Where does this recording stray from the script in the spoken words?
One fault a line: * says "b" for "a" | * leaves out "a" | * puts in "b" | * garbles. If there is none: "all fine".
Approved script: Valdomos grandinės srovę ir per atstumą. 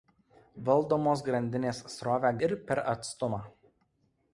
all fine